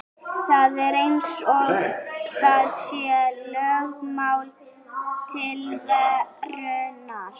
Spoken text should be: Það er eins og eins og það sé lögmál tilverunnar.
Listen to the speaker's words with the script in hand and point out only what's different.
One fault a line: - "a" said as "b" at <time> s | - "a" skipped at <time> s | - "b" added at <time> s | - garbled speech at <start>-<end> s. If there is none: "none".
- "eins og" skipped at 1.7 s